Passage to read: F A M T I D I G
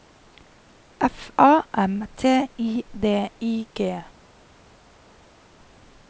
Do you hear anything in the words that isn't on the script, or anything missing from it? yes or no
no